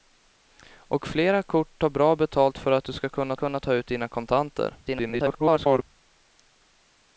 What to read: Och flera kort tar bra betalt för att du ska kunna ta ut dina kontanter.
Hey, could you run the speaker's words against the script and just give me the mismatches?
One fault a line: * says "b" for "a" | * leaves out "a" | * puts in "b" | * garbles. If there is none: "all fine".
* puts in "kunna"
* garbles